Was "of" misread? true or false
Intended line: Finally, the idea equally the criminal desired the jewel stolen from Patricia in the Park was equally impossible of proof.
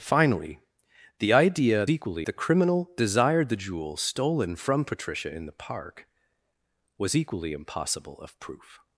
false